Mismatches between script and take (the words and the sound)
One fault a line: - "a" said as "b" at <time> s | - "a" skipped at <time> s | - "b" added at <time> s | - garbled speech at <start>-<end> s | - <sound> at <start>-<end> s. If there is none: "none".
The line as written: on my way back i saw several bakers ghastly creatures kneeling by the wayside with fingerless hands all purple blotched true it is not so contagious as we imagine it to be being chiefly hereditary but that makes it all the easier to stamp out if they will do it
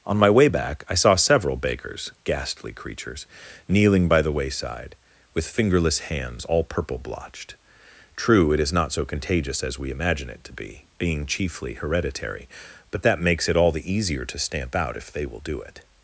none